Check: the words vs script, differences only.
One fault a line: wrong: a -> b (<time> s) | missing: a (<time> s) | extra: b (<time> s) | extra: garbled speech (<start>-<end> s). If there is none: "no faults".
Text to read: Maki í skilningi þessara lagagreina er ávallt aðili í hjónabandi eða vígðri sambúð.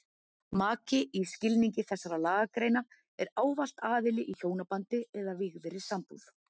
no faults